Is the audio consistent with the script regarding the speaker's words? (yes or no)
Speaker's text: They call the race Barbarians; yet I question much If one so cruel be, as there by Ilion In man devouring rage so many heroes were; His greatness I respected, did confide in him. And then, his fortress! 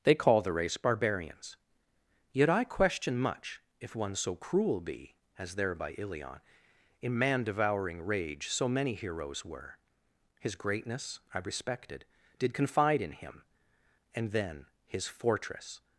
yes